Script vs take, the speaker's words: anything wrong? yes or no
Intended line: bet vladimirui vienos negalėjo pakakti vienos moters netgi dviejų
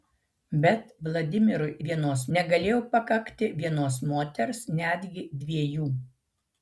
no